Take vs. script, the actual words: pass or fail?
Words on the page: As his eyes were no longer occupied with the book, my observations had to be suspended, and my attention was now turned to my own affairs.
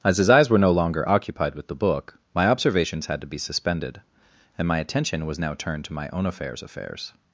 fail